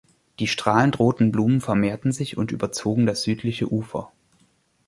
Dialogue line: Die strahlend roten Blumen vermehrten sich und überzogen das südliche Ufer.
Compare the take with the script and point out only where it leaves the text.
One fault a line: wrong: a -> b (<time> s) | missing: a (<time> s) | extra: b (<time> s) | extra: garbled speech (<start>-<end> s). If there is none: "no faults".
no faults